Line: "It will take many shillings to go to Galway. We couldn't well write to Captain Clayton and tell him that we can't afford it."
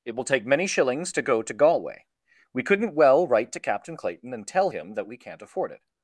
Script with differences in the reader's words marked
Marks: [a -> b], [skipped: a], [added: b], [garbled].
"It will take many shillings to go to Galway. We couldn't well write to Captain Clayton and tell him that we can't afford it."